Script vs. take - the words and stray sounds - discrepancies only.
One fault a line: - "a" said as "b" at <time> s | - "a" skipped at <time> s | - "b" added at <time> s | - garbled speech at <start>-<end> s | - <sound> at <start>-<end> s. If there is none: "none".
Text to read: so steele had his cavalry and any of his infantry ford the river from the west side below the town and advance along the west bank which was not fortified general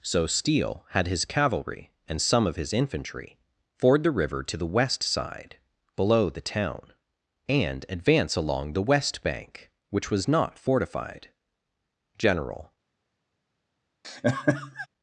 - "any" said as "some" at 2.2 s
- "from" said as "to" at 4.4 s
- laugh at 14.0-14.9 s